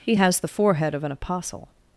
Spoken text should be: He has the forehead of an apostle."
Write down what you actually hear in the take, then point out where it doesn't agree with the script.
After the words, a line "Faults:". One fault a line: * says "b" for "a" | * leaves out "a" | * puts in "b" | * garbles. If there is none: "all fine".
He has the forehead of an apostle."
Faults:
all fine